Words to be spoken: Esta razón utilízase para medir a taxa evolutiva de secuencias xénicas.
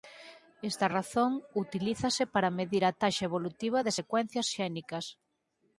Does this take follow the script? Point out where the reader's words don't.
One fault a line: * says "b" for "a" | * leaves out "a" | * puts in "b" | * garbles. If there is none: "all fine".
all fine